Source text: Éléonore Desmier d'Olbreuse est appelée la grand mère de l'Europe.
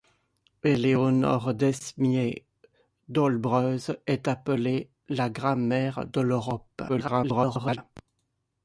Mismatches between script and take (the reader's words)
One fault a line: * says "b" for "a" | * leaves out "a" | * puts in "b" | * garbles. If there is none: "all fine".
* garbles